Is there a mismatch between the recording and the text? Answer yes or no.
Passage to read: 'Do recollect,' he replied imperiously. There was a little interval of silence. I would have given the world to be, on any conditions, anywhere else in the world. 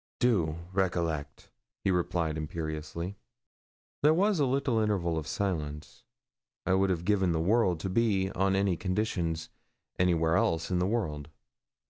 no